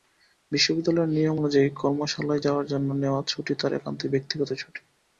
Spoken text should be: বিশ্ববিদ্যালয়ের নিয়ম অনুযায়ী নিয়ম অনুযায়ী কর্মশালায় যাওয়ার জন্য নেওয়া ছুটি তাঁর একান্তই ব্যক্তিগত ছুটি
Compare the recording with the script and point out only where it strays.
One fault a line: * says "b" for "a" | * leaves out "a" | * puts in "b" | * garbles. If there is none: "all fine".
* leaves out "নিয়ম অনুযায়ী"